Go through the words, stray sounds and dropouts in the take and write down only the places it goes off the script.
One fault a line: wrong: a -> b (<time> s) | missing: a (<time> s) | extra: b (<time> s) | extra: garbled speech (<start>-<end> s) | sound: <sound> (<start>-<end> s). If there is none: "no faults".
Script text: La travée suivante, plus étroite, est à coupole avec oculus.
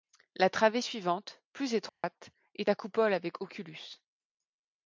sound: dropout (1.9-2.0 s)